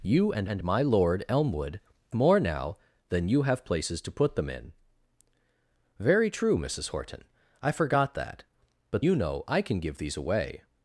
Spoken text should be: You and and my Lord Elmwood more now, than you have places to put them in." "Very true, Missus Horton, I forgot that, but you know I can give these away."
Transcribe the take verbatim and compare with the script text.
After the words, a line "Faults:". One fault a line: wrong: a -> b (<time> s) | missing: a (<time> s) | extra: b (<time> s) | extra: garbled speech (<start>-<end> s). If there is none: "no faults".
You and and my Lord Elmwood more now, than you have places to put them in." "Very true, Missus Horton, I forgot that, but you know I can give these away."
Faults:
no faults